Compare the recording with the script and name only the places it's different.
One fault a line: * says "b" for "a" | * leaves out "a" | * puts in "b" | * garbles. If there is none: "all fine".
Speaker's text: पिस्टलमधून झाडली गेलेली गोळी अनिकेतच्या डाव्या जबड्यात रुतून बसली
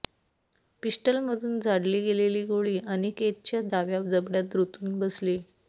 all fine